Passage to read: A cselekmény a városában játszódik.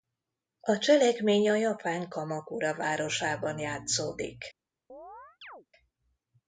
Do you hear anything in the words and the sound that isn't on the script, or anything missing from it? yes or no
yes